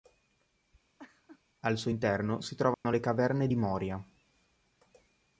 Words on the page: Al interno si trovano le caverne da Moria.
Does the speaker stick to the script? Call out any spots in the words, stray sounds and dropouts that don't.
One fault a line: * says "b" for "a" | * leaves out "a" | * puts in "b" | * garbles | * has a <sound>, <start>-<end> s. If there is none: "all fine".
* has a laugh, 1.0-1.4 s
* puts in "suo"
* has a dropout, 2.7-2.9 s
* says "di" for "da"